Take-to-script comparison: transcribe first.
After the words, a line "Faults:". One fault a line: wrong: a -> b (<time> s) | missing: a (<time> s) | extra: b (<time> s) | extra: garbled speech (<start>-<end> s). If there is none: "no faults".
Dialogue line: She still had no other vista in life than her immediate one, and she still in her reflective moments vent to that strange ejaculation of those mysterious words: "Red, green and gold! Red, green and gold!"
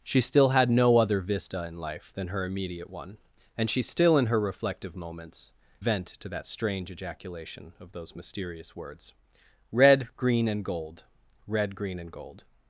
She still had no other vista in life than her immediate one, and she still in her reflective moments vent to that strange ejaculation of those mysterious words: "Red, green and gold! Red, green and gold!"
Faults:
no faults